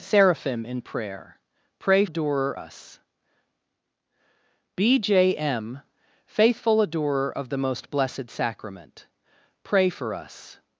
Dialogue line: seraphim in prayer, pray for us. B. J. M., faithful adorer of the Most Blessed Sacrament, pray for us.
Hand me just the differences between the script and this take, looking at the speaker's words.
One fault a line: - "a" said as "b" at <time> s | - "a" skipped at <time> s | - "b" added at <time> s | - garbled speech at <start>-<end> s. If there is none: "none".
- "for" said as "adorer" at 2.0 s